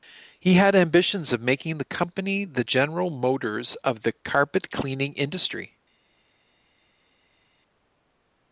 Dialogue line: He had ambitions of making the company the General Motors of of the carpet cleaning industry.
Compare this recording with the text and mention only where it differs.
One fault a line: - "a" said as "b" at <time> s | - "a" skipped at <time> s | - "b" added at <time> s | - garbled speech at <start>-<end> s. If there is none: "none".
- "of" skipped at 4.0 s